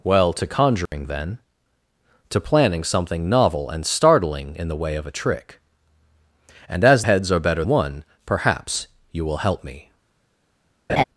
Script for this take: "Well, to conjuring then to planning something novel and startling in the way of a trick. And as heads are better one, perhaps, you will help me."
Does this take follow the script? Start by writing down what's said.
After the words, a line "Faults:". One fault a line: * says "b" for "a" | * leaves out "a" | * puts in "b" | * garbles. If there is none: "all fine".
"Well, to conjuring then to planning something novel and startling in the way of a trick. And as heads are better one, perhaps, you will help me."
Faults:
all fine